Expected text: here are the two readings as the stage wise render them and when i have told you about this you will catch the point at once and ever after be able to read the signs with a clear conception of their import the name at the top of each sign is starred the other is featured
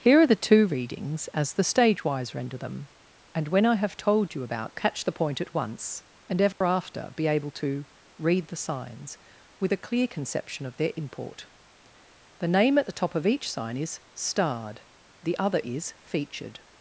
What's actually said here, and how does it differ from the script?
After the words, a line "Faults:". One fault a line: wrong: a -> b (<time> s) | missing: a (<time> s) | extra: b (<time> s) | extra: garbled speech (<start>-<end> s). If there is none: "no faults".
here are the two readings as the stage wise render them and when i have told you about catch the point at once and ever after be able to read the signs with a clear conception of their import the name at the top of each sign is starred the other is featured
Faults:
missing: this you will (4.8 s)